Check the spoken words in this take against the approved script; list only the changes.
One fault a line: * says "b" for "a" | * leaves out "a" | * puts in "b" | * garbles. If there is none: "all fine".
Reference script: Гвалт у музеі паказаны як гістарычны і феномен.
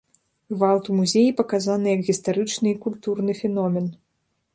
* puts in "культурны"